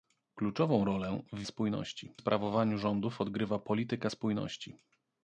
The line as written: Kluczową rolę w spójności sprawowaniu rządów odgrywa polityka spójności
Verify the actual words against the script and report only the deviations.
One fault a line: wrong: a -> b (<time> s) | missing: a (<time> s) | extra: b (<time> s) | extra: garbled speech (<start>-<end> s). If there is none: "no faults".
no faults